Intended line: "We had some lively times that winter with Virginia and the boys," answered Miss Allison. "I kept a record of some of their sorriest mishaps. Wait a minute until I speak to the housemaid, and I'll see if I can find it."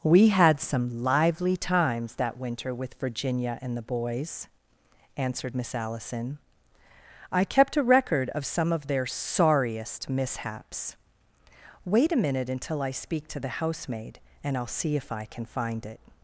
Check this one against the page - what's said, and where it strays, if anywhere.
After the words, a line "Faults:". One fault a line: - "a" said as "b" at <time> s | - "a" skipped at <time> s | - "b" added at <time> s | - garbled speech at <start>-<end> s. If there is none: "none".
"We had some lively times that winter with Virginia and the boys," answered Miss Allison. "I kept a record of some of their sorriest mishaps. Wait a minute until I speak to the housemaid, and I'll see if I can find it."
Faults:
none